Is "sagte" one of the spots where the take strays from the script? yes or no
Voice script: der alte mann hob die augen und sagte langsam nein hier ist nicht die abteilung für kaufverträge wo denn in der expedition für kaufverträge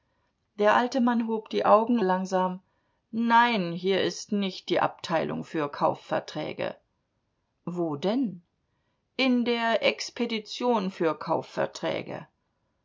yes